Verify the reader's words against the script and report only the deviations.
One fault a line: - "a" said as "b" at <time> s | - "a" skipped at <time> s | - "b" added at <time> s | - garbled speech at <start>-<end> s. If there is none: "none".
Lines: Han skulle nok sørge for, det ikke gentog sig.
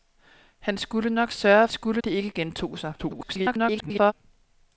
- "for" said as "skulle" at 1.7 s
- garbled speech at 3.0-4.1 s